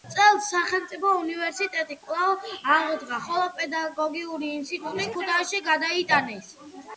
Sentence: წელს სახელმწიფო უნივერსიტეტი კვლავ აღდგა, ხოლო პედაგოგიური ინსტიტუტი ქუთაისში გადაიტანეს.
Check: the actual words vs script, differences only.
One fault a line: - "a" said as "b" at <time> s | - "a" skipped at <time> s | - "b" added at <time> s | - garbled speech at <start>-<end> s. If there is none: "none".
none